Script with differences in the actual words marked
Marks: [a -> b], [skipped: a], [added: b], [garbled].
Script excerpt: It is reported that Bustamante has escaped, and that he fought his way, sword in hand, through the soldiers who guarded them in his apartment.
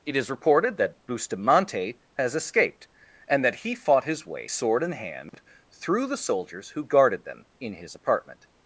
It is reported that Bustamante has escaped, and that he fought his way, sword in hand, through the soldiers who guarded them in his apartment.